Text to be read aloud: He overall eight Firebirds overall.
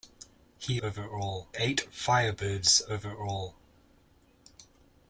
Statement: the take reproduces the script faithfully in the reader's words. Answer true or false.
true